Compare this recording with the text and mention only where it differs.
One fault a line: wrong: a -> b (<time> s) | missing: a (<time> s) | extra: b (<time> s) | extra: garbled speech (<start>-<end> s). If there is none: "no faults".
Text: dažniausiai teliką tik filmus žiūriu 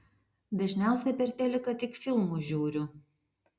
extra: per (1.2 s)